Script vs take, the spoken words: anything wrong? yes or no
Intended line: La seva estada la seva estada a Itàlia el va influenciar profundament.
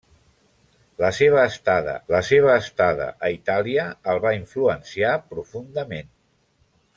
no